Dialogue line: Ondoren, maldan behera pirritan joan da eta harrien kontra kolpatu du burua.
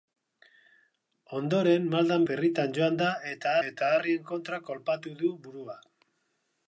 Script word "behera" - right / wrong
wrong